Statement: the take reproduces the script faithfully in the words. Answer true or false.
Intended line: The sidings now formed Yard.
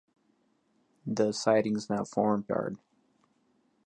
true